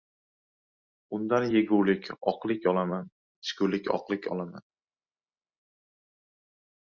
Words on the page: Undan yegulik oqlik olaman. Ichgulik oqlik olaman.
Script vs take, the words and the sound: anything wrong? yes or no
no